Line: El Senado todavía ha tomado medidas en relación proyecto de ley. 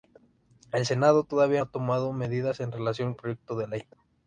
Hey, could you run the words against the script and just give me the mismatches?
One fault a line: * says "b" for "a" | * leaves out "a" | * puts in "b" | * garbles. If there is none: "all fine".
all fine